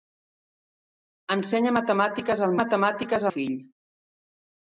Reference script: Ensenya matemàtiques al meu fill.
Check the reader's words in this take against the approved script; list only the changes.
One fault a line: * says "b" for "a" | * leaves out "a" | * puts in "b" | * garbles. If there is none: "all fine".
* says "matemàtiques" for "meu"